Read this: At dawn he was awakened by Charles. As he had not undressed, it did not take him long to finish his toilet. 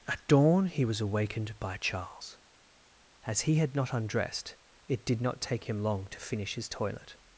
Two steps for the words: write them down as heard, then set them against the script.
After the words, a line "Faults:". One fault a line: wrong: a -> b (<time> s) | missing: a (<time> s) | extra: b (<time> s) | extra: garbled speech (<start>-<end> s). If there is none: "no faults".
At dawn he was awakened by Charles. As he had not undressed, it did not take him long to finish his toilet.
Faults:
no faults